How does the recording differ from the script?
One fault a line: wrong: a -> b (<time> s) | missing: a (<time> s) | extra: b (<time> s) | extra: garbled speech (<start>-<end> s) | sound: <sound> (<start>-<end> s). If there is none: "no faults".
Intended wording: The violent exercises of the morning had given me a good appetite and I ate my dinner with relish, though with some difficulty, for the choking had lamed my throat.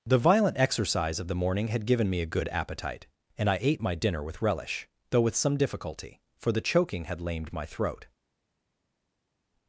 wrong: exercises -> exercise (0.6 s)